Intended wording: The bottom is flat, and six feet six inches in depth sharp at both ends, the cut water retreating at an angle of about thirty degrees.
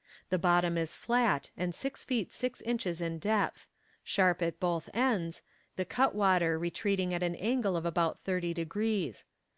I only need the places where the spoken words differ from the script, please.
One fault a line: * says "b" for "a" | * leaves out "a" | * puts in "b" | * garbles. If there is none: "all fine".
all fine